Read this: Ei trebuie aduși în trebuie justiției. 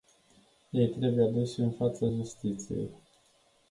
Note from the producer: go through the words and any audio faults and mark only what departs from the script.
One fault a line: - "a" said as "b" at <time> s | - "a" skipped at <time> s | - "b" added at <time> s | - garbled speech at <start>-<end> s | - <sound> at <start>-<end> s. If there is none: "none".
- "trebuie" said as "fața" at 1.7 s